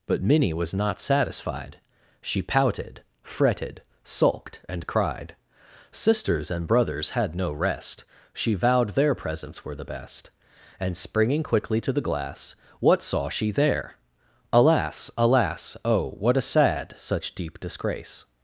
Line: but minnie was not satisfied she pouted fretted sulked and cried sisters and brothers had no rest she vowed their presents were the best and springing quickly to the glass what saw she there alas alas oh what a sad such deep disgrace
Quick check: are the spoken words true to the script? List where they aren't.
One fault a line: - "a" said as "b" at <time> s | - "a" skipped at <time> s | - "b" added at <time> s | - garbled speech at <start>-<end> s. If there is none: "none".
none